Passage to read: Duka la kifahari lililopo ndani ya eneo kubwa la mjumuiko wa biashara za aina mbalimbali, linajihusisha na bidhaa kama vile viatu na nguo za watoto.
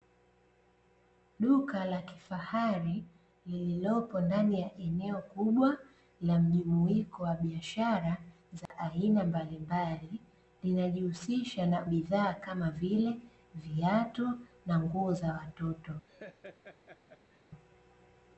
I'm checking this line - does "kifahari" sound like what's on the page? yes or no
yes